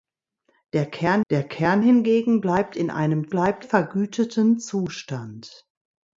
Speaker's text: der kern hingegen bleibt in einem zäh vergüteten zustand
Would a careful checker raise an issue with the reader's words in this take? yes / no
yes